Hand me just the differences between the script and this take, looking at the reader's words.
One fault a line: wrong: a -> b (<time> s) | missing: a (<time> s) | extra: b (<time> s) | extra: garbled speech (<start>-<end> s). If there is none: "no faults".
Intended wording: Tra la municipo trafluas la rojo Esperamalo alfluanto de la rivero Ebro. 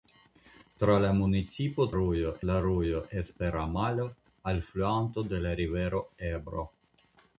wrong: trafluas -> rojo (2.0 s)